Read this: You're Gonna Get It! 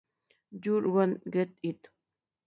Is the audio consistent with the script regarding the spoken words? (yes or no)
yes